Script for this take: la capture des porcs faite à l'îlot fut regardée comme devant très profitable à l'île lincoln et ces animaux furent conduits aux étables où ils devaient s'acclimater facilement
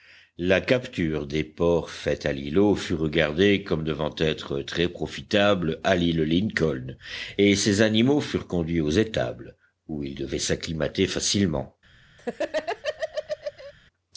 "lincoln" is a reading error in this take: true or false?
false